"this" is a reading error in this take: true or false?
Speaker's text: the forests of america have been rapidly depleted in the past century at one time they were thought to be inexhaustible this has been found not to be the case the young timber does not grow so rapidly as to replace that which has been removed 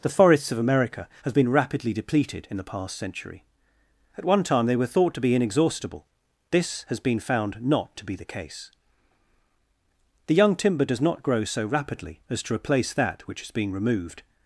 false